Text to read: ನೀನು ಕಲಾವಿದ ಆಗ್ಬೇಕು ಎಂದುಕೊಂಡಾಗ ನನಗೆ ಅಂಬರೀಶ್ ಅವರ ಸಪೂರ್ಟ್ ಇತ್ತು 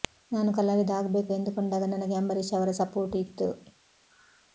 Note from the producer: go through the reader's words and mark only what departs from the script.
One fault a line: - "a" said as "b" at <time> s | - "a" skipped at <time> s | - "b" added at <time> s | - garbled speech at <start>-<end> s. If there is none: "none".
- "ನೀನು" said as "ನಾನು" at 0.3 s